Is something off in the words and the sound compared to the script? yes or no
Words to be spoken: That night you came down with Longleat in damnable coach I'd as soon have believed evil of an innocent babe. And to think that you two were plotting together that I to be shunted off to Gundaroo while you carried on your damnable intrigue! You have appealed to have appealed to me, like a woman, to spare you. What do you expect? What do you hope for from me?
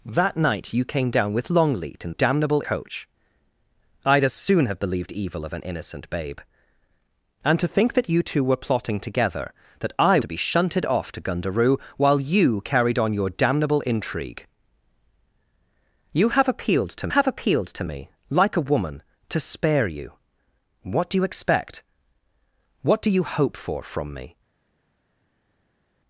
no